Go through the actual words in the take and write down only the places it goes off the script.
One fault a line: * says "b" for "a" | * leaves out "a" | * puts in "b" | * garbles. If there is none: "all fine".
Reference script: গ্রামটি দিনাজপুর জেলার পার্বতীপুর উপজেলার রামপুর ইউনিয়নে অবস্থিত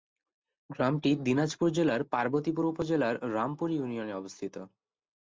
all fine